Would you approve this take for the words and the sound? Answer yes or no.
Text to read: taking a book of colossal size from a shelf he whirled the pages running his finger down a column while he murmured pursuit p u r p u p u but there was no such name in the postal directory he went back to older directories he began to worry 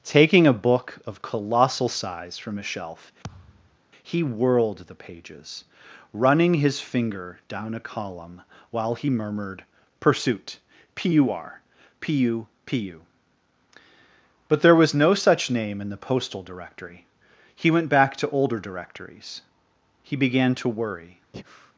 no